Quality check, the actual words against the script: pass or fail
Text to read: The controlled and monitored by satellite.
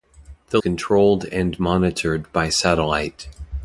pass